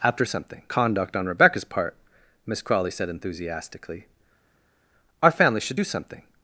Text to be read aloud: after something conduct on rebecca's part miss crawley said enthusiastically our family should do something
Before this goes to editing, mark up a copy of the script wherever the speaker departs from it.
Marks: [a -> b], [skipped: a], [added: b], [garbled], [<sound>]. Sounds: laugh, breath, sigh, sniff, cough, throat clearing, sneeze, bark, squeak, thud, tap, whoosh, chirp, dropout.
after something conduct on rebecca's part miss crawley said enthusiastically our family should do something